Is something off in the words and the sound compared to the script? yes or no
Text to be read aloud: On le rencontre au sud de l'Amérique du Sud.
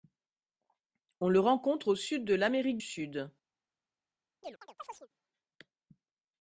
yes